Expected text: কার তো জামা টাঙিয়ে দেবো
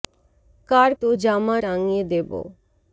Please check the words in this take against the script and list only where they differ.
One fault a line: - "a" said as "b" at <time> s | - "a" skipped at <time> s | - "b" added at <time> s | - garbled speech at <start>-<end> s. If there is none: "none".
none